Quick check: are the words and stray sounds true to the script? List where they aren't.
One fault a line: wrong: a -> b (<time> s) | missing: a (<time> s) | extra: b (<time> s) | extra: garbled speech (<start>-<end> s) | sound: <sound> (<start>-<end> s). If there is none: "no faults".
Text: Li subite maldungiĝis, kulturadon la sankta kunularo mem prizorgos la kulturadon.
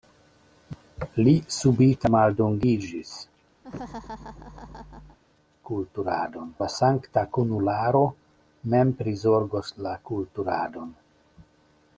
sound: laugh (3.6-5.2 s)